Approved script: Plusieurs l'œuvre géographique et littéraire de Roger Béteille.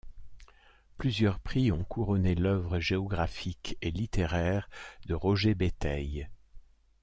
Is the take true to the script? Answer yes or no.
no